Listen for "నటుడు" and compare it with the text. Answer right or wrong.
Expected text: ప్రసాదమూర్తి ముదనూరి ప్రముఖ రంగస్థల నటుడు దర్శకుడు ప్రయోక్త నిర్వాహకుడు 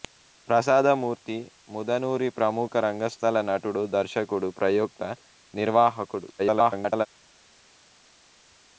right